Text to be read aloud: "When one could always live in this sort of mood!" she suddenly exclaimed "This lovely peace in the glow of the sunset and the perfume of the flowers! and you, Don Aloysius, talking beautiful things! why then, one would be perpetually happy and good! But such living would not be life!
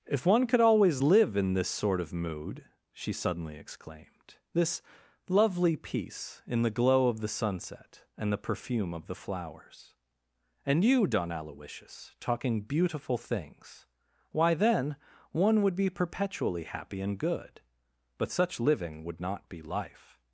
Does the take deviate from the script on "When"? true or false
true